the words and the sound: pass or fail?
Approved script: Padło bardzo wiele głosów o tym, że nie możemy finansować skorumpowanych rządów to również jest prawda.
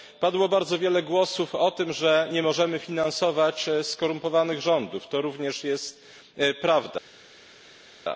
pass